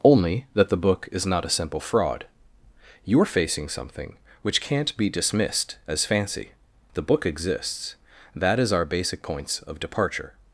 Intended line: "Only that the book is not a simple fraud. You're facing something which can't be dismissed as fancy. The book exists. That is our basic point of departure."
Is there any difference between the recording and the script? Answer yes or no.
yes